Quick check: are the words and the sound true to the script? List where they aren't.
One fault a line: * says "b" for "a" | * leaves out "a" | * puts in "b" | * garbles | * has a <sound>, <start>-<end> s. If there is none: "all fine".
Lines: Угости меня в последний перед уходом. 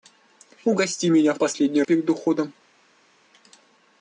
all fine